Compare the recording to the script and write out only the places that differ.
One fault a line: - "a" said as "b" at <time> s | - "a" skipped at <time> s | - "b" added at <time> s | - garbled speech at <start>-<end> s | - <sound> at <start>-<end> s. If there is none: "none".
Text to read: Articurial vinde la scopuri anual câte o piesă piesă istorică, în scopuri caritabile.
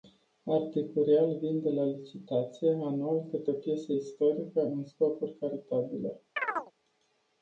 - "scopuri" said as "licitație" at 1.9 s
- "piesă" skipped at 3.9 s
- chirp at 6.4-6.7 s